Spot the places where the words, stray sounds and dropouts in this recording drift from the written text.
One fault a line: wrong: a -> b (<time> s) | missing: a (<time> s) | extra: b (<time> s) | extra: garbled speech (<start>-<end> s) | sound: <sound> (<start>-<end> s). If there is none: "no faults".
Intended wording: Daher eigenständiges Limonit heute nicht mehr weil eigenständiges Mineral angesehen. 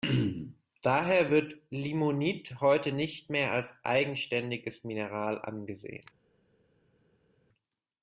wrong: eigenständiges -> wird (1.3 s)
wrong: weil -> als (3.5 s)